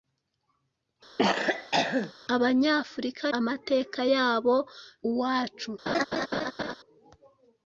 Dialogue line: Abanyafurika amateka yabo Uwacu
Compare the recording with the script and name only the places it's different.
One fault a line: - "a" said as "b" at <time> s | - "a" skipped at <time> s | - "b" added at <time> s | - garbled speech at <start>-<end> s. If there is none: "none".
none